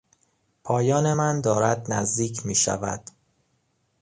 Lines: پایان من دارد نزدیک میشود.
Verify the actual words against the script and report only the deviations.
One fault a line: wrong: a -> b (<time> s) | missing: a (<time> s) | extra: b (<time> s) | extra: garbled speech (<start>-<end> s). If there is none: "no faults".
no faults